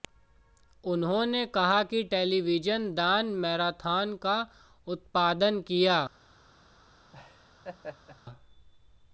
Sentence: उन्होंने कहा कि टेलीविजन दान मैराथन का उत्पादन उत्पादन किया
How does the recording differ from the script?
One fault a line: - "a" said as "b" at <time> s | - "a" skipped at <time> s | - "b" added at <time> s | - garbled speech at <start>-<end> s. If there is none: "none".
- "उत्पादन" skipped at 5.6 s